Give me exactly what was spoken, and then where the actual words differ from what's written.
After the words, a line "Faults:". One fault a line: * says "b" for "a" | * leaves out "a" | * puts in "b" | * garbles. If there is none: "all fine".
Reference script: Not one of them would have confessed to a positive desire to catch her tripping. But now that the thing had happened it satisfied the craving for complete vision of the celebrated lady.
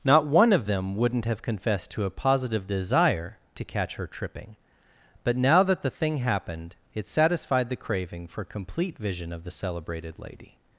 Not one of them wouldn't have confessed to a positive desire to catch her tripping. But now that the thing happened it satisfied the craving for complete vision of the celebrated lady.
Faults:
* says "wouldn't" for "would"
* leaves out "had"